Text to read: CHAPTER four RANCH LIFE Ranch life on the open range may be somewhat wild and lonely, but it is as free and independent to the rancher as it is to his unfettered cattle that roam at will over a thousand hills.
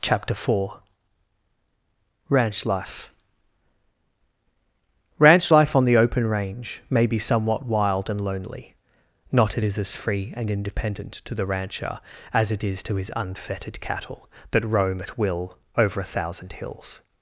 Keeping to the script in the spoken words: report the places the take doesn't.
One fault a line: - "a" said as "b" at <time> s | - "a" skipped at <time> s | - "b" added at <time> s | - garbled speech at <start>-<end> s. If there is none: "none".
- "but" said as "not" at 9.3 s